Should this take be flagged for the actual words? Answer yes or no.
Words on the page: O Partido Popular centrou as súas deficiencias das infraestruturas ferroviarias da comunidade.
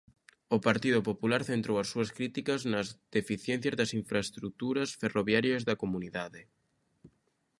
yes